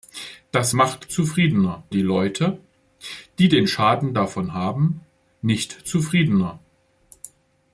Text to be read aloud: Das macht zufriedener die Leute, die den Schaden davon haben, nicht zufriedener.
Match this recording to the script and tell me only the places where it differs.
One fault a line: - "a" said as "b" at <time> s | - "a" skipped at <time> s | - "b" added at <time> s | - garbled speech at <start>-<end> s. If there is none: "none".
none